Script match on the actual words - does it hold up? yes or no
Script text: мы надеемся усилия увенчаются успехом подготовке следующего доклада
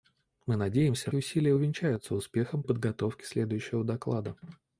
yes